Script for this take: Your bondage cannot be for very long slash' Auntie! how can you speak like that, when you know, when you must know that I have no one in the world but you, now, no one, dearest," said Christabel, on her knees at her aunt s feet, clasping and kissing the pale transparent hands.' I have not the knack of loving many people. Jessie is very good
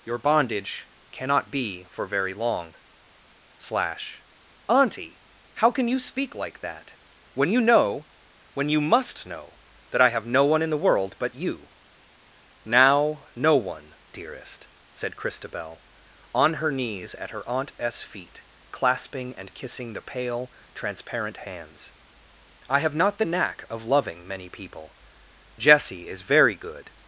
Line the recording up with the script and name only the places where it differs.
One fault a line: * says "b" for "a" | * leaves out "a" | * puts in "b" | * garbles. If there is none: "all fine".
all fine